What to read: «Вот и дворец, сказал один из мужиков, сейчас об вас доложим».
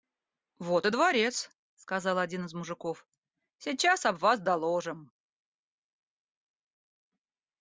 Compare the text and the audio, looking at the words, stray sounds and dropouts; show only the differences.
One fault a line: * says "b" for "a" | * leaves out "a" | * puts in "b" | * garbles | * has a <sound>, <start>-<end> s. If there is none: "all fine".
all fine